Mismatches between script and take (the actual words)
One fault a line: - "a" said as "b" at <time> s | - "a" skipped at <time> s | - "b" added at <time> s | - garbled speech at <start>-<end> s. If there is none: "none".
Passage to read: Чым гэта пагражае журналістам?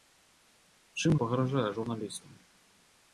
- "гэта" skipped at 1.1 s